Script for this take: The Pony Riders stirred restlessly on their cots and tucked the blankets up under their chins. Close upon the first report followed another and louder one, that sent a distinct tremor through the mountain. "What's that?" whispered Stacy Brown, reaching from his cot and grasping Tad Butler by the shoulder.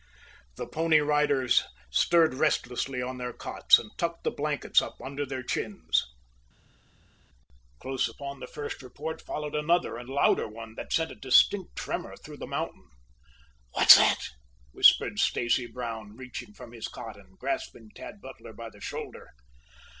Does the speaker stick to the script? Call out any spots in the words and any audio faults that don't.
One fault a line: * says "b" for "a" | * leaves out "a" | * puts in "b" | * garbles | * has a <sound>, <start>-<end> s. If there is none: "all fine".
all fine